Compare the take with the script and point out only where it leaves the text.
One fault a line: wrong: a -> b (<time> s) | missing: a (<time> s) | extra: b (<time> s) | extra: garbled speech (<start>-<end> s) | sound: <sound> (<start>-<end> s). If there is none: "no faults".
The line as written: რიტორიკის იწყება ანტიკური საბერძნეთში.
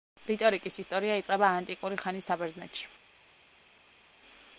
extra: ისტორია (0.8 s)
extra: ხანის (2.0 s)